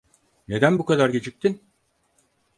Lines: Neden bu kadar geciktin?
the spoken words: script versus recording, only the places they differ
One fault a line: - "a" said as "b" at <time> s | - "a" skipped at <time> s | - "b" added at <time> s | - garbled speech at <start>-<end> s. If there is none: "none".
none